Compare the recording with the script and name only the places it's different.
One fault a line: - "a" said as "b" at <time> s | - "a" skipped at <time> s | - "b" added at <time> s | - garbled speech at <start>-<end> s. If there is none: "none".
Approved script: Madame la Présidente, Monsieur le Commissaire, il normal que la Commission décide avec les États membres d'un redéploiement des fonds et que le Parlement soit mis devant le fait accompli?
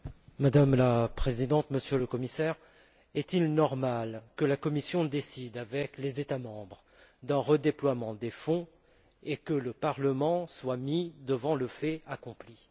- "est" added at 3.1 s